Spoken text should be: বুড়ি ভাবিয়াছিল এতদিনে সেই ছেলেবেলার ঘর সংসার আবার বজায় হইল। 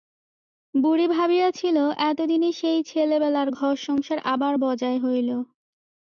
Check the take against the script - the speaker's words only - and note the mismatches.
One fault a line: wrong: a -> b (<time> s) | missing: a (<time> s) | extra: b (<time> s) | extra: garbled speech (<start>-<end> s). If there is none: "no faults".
no faults